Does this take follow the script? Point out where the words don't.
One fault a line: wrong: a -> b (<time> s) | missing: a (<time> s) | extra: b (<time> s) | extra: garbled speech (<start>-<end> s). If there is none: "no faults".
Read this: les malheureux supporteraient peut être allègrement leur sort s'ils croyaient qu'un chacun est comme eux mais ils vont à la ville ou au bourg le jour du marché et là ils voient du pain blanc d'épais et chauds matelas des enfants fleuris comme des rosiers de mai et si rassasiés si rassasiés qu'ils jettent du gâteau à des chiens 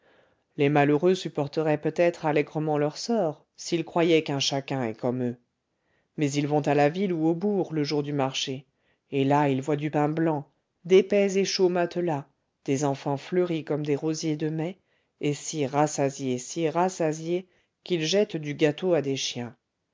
no faults